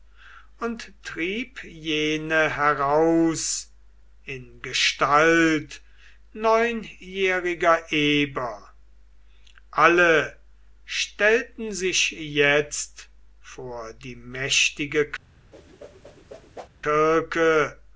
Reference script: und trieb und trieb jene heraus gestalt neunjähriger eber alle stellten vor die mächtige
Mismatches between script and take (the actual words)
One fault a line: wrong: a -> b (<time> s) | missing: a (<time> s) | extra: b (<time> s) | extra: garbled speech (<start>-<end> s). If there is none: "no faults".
missing: und trieb (1.6 s)
extra: in (4.2 s)
extra: sich jetzt (11.7 s)